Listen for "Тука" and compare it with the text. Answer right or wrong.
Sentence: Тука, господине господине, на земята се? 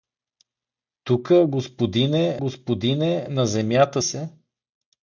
right